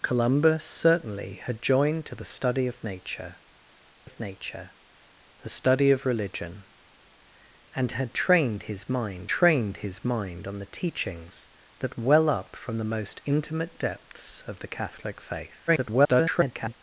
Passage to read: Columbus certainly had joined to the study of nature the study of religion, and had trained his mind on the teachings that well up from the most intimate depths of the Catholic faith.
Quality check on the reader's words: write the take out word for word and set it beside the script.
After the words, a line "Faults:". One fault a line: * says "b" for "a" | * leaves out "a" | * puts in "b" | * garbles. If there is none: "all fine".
Columbus certainly had joined to the study of nature of nature the study of religion, and had trained his mind trained his mind on the teachings that well up from the most intimate depths of the Catholic faith. [garbled]
Faults:
* puts in "of nature"
* puts in "trained his mind"
* garbles